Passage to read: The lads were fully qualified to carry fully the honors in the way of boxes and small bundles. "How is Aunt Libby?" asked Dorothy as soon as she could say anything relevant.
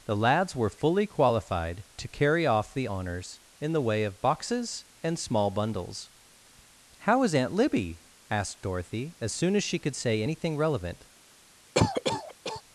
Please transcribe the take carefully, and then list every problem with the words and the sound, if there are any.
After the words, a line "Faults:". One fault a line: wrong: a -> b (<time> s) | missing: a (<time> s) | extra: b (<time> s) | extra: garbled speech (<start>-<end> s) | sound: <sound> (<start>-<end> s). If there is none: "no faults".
The lads were fully qualified to carry off the honors in the way of boxes and small bundles. "How is Aunt Libby?" asked Dorothy as soon as she could say anything relevant.
Faults:
wrong: fully -> off (2.5 s)
sound: cough (11.8-12.6 s)